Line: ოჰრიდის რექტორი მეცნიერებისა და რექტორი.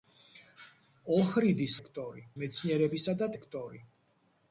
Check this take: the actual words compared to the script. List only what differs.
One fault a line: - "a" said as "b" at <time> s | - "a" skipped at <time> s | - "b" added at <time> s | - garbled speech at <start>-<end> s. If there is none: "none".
none